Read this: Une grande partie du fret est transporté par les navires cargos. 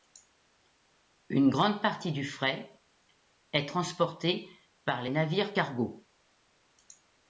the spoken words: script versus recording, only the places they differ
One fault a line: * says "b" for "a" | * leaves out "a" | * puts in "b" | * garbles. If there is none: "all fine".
all fine